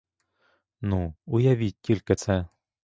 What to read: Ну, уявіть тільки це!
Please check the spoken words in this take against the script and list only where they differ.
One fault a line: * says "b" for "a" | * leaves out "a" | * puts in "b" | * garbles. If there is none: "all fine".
all fine